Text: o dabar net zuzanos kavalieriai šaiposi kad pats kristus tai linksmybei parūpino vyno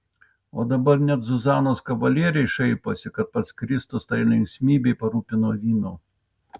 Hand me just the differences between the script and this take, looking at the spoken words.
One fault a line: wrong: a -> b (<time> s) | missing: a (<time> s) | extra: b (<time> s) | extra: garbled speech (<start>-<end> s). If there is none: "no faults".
no faults